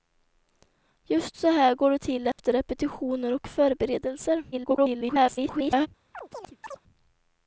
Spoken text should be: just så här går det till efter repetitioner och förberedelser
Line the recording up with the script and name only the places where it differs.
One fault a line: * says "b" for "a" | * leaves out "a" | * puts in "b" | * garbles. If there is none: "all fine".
* garbles